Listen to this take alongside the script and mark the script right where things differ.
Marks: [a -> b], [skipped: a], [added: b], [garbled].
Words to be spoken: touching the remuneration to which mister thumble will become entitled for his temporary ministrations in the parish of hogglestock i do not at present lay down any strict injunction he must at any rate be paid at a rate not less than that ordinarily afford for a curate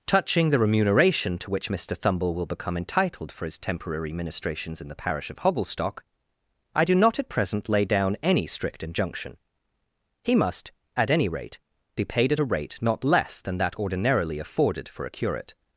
touching the remuneration to which mister thumble will become entitled for his temporary ministrations in the parish of hogglestock i do not at present lay down any strict injunction he must at any rate be paid at a rate not less than that ordinarily [afford -> afforded] for a curate